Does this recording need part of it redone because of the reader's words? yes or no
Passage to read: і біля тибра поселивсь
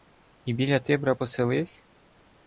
no